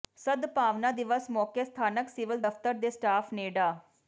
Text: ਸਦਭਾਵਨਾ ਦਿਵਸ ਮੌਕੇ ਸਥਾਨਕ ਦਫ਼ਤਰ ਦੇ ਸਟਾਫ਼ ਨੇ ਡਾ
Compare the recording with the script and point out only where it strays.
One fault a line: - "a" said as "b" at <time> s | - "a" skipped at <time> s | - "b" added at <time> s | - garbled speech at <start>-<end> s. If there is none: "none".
- "ਸਿਵਲ" added at 2.1 s